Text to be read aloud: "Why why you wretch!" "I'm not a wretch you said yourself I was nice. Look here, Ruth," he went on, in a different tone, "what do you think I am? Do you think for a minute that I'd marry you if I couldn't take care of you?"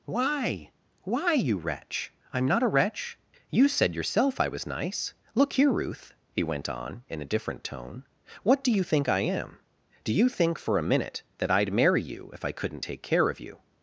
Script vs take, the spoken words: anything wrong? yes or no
no